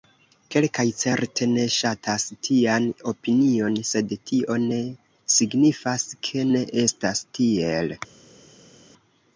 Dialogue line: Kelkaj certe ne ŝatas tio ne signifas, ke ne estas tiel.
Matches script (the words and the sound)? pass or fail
fail